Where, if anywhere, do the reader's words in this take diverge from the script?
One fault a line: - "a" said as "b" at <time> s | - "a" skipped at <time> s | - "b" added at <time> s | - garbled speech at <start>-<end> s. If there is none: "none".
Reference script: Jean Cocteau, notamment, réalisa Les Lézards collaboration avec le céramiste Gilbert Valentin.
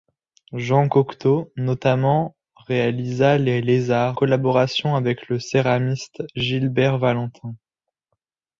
none